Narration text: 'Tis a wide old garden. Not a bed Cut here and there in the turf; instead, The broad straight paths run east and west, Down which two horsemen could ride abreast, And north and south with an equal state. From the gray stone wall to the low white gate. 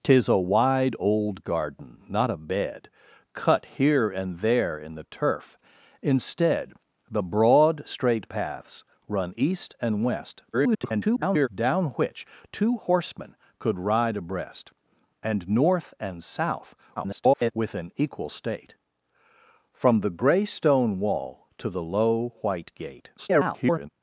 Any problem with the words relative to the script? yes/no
yes